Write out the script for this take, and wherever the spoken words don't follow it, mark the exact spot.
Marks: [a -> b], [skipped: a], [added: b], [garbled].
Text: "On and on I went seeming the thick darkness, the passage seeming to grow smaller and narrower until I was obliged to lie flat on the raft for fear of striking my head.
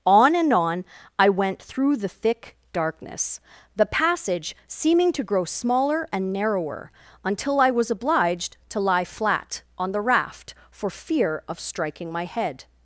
"On and on I went [seeming -> through] the thick darkness, the passage seeming to grow smaller and narrower until I was obliged to lie flat on the raft for fear of striking my head.